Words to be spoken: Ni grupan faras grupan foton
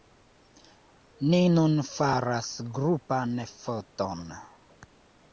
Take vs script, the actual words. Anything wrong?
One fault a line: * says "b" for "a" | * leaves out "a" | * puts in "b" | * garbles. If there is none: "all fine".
* says "nun" for "grupan"